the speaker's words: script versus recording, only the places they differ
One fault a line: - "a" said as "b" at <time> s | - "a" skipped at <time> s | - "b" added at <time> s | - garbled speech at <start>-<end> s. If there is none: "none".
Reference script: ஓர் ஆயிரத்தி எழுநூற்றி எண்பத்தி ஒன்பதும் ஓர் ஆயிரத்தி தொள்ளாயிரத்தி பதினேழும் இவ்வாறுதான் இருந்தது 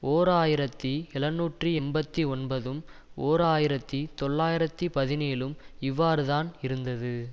none